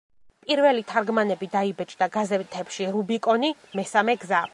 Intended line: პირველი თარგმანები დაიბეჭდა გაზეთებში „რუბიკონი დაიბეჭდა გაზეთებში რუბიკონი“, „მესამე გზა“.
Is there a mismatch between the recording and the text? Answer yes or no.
yes